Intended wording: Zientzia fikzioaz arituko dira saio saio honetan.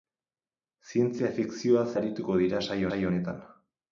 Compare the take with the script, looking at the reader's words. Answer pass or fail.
pass